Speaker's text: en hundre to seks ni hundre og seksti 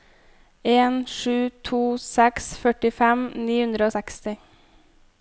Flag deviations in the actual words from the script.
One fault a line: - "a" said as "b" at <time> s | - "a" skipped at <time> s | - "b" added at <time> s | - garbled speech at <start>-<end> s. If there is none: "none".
- "hundre" said as "sju" at 1.2 s
- "førtifem" added at 2.6 s